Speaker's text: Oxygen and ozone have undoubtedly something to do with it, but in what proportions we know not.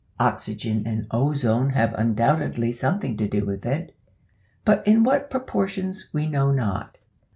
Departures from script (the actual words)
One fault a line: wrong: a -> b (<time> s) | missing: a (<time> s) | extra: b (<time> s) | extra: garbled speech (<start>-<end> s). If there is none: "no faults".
no faults